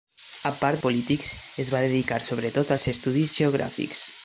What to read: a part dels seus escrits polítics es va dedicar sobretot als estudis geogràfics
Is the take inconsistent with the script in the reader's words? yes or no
yes